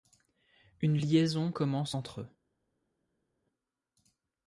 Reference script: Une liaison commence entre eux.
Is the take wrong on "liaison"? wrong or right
right